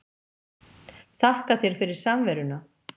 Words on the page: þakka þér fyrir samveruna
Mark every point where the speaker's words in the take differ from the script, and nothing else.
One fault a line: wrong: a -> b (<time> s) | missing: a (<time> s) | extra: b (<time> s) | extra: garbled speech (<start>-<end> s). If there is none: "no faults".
no faults